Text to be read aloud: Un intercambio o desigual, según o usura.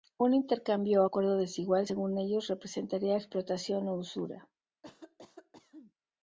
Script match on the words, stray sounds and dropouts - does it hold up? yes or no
no